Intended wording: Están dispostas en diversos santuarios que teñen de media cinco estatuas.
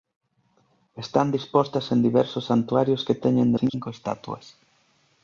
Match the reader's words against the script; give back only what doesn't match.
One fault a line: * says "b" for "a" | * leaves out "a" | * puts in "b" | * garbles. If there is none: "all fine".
* leaves out "media"